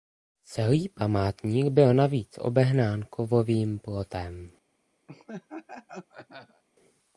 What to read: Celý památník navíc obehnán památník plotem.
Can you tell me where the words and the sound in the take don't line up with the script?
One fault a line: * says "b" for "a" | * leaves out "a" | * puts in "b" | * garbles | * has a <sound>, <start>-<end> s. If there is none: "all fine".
* puts in "byl"
* says "kovovým" for "památník"
* has a laugh, 5.1-6.6 s